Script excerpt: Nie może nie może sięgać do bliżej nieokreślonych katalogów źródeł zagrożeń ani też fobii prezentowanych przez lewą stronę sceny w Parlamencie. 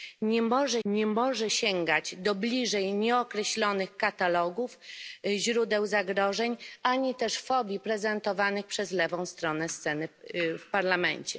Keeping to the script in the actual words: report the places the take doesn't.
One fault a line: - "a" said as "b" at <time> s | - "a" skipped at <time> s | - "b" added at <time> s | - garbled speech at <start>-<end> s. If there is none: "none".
none